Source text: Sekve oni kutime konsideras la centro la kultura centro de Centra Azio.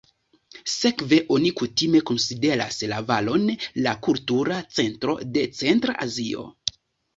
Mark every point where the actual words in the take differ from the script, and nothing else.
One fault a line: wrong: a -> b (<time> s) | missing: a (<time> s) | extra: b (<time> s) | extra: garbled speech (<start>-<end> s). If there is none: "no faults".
wrong: centro -> valon (3.1 s)